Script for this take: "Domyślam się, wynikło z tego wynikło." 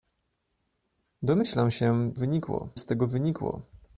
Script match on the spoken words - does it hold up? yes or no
yes